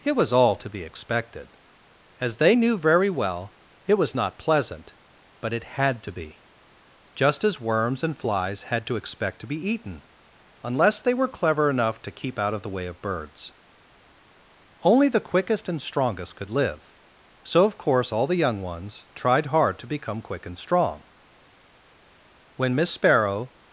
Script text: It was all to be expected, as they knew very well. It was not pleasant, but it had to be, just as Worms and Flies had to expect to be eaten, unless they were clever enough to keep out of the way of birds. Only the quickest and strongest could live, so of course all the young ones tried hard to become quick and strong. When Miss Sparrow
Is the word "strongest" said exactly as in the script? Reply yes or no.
yes